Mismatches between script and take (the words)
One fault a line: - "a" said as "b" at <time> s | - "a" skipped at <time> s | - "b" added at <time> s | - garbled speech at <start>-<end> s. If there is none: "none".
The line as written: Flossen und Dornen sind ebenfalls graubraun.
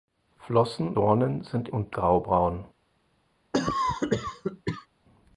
- "und" skipped at 0.9 s
- "ebenfalls" said as "und" at 1.7 s